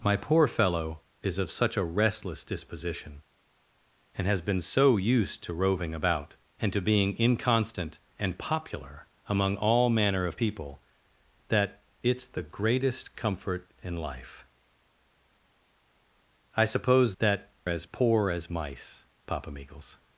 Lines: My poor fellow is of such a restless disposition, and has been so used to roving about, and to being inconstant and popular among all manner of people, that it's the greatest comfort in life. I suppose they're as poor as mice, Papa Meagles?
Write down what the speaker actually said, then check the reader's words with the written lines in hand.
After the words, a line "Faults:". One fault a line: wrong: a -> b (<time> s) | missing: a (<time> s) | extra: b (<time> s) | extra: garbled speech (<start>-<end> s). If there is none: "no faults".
My poor fellow is of such a restless disposition, and has been so used to roving about, and to being inconstant and popular among all manner of people, that it's the greatest comfort in life. I suppose that as poor as mice, Papa Meagles?
Faults:
wrong: they're -> that (17.2 s)